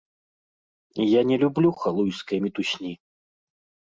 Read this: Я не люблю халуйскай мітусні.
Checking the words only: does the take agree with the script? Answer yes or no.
yes